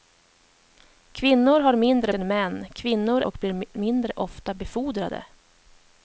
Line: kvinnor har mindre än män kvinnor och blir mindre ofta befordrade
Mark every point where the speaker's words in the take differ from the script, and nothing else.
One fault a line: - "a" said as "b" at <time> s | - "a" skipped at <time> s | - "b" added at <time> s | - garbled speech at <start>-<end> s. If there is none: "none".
none